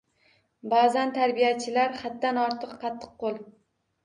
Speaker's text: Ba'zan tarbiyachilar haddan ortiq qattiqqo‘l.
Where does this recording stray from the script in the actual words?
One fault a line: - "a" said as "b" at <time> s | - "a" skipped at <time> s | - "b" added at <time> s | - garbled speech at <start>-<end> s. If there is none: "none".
none